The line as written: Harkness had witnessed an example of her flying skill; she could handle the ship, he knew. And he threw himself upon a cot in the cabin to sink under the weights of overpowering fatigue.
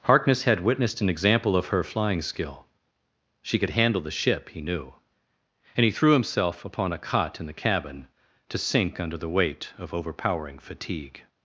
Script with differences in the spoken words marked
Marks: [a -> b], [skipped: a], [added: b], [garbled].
Harkness had witnessed an example of her flying skill; she could handle the ship, he knew. And he threw himself upon a cot in the cabin to sink under the [weights -> weight] of overpowering fatigue.